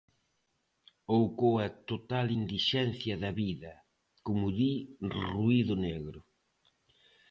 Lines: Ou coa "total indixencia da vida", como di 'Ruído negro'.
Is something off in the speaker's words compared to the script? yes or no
no